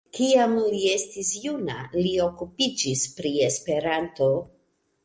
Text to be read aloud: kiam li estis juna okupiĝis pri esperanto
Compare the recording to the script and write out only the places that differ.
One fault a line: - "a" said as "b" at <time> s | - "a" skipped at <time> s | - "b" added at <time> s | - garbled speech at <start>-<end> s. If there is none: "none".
- "li" added at 2.0 s